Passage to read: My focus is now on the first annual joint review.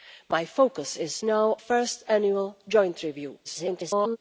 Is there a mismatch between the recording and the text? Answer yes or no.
yes